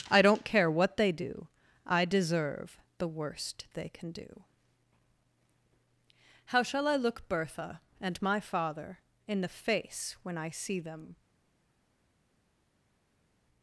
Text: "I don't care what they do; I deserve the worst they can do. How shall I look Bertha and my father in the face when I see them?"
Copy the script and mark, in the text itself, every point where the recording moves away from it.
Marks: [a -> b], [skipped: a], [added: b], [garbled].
"I don't care what they do; I deserve the worst they can do. How shall I look Bertha and my father in the face when I see them?"